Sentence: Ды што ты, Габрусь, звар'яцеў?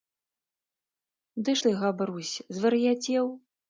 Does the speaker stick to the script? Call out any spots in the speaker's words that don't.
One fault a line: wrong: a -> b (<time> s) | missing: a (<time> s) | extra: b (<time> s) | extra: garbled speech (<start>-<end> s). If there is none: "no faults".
missing: што (1.6 s)